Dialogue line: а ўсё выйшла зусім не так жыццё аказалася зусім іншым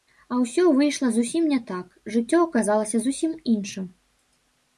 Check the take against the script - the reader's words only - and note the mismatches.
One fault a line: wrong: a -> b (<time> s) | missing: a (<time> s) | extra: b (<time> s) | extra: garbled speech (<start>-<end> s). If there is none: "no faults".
no faults